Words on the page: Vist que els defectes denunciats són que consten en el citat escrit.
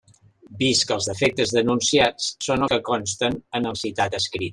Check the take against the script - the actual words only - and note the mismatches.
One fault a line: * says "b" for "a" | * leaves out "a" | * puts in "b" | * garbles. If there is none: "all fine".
all fine